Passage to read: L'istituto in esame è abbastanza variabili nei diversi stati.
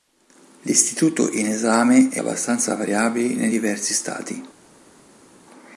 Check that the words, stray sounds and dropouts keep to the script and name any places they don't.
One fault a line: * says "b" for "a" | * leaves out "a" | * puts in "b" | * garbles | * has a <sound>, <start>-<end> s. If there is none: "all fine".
all fine